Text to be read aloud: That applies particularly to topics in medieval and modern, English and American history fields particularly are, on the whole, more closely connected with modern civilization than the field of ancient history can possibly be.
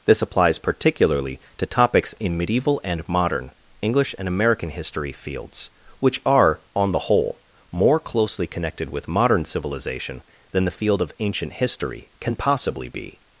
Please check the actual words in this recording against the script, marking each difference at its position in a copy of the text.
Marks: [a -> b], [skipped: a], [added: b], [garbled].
[That -> This] applies particularly to topics in medieval and modern, English and American history fields [particularly -> which] are, on the whole, more closely connected with modern civilization than the field of ancient history can possibly be.